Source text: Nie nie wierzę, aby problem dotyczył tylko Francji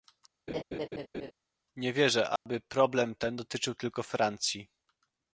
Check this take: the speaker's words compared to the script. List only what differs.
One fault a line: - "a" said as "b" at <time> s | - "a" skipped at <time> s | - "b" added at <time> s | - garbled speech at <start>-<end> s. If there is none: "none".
- "nie" skipped at 1.9 s
- "ten" added at 3.1 s